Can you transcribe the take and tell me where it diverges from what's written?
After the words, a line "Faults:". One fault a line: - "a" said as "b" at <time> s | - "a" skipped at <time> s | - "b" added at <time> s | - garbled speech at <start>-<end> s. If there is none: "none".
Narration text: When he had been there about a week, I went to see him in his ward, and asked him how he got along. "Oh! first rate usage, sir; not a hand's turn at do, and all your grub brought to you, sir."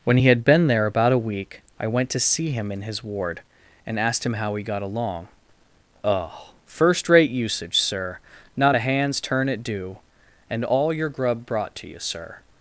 When he had been there about a week, I went to see him in his ward, and asked him how he got along. "Oh! first rate usage, sir; not a hand's turn at do, and all your grub brought to you, sir."
Faults:
none